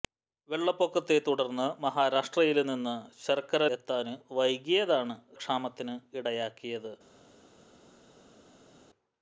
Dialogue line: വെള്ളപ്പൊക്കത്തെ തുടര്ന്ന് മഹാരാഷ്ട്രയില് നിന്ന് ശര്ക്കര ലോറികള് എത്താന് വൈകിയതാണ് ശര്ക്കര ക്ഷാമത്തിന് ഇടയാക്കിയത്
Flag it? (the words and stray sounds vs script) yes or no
yes